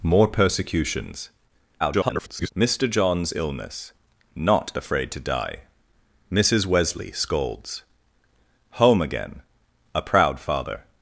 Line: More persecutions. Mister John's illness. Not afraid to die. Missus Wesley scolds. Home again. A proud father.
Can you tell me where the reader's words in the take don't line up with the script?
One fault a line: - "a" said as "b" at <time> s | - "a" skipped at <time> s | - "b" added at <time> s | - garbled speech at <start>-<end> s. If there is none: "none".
- garbled speech at 1.8-2.5 s